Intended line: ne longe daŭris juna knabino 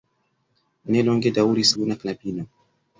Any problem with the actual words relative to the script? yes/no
no